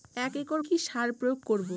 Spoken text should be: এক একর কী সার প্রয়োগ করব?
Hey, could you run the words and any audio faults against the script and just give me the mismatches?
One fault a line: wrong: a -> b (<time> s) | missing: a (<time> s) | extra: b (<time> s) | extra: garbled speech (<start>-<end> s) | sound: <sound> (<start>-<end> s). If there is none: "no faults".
no faults